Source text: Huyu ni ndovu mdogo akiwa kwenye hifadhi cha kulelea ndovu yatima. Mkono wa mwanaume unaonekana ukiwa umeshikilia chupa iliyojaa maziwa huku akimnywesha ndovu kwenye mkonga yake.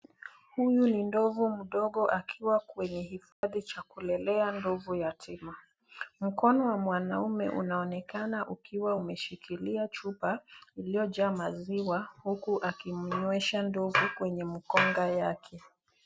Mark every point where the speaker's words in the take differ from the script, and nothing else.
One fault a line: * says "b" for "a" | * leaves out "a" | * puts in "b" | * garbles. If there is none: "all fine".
all fine